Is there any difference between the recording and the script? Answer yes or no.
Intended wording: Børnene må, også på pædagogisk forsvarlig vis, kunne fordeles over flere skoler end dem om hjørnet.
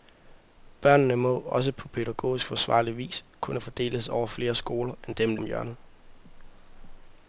no